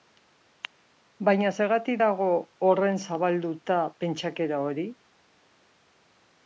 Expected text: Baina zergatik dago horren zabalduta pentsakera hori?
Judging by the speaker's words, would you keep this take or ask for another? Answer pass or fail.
pass